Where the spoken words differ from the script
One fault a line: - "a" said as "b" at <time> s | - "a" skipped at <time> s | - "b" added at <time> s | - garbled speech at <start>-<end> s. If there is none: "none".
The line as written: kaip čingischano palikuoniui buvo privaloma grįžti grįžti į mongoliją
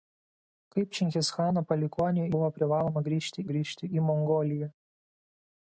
none